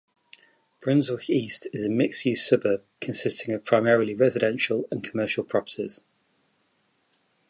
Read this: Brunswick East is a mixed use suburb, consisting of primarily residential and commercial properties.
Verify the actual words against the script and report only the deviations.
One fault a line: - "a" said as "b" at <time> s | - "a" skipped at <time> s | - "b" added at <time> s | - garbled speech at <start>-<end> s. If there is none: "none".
none